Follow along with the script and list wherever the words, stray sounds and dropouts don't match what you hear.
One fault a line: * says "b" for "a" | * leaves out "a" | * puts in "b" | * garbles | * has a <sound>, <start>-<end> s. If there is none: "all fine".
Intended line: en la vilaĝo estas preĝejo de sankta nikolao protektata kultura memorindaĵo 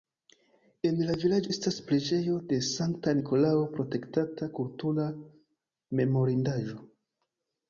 all fine